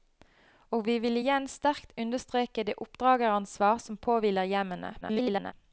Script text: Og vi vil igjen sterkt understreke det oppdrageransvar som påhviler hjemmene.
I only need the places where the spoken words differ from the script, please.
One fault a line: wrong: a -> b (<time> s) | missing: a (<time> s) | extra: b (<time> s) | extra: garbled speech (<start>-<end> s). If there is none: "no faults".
extra: garbled speech (5.0-5.5 s)